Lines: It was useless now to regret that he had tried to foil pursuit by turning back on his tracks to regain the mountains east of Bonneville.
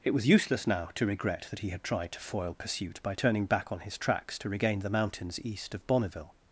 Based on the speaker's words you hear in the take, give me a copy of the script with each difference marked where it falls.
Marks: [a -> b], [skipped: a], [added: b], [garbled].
It was useless now to regret that he had tried to foil pursuit by turning back on his tracks to regain the mountains east of Bonneville.